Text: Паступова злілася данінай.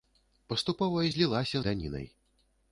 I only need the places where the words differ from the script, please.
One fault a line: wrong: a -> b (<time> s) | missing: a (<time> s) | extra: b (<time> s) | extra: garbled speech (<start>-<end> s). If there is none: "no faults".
no faults